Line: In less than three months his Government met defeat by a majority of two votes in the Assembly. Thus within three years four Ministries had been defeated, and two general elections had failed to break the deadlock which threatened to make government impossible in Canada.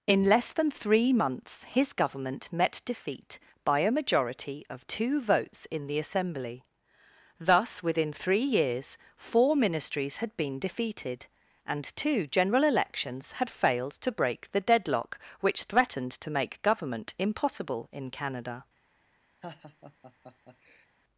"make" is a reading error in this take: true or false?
false